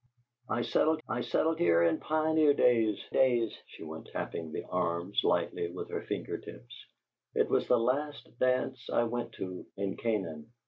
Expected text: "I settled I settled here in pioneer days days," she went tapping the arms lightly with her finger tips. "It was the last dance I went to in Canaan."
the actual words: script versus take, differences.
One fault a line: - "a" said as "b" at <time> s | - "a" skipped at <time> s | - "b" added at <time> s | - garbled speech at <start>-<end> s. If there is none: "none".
none